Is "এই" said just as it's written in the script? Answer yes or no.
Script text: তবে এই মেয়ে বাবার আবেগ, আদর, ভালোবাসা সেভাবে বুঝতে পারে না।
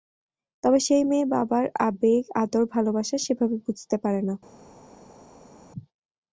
no